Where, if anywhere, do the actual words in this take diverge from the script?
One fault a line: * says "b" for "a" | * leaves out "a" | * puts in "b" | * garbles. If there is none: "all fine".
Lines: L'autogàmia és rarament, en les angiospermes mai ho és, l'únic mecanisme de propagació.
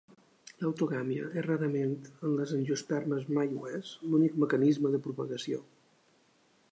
all fine